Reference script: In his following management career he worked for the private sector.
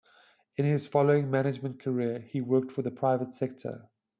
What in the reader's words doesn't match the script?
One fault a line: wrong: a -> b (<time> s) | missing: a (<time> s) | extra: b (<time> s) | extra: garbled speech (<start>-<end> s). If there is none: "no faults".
no faults